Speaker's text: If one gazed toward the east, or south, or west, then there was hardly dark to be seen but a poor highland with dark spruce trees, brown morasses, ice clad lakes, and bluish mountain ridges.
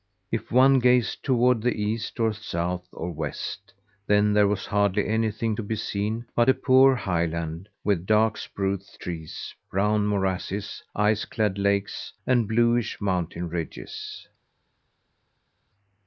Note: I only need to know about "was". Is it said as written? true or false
true